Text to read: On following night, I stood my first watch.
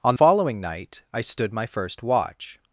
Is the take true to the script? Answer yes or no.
yes